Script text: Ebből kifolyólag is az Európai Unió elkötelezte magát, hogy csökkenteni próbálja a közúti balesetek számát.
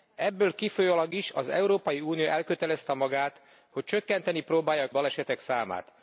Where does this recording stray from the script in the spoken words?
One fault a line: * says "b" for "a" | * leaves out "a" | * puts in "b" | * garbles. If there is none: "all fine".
* leaves out "közúti"